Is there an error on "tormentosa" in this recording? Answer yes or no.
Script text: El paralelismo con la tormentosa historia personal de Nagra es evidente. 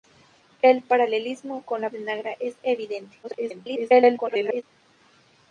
yes